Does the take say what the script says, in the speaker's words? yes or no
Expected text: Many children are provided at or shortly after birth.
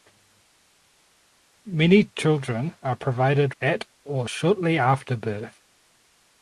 yes